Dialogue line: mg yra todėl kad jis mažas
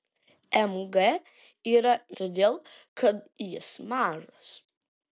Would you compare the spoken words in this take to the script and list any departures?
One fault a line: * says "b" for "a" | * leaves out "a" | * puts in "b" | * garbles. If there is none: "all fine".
all fine